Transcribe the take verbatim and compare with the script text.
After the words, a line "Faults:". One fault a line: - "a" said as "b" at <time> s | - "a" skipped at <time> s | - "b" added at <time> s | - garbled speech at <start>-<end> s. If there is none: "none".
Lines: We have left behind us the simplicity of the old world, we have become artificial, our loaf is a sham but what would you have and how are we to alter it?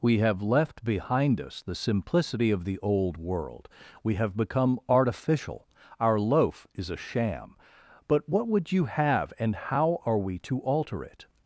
We have left behind us the simplicity of the old world, we have become artificial, our loaf is a sham but what would you have and how are we to alter it?
Faults:
none